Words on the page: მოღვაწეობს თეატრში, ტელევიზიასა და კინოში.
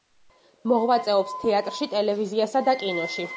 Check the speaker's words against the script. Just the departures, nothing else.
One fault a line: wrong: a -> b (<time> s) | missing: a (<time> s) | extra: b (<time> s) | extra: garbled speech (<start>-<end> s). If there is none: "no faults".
no faults